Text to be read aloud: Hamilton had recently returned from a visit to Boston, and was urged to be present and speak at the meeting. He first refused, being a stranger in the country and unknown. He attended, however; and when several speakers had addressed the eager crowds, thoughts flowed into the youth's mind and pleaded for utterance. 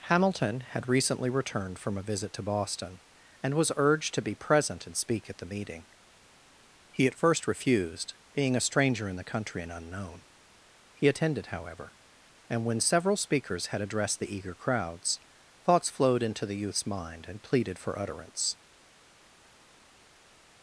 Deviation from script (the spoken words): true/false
true